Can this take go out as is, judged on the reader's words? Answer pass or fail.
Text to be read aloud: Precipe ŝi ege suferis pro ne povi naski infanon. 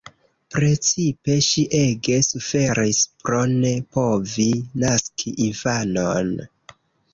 pass